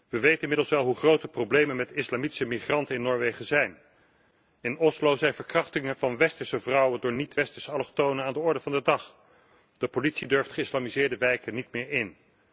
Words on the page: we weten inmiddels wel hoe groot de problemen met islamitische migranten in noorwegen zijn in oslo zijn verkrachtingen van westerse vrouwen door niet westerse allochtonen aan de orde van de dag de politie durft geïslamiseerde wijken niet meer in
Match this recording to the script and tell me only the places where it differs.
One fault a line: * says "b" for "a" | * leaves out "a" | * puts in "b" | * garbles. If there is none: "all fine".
all fine